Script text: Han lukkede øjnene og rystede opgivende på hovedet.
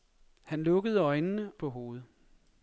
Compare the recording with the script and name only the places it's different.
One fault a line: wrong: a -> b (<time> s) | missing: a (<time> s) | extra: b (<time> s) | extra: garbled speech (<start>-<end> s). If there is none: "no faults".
missing: og rystede opgivende (1.5 s)